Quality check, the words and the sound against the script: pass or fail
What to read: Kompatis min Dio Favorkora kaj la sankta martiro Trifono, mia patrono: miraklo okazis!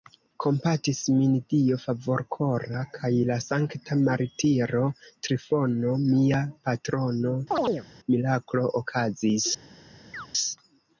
fail